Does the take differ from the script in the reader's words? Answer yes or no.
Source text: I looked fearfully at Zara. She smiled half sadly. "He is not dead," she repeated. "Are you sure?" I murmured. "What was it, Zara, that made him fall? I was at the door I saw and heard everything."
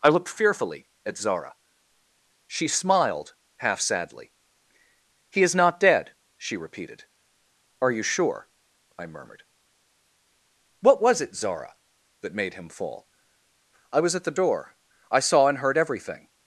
no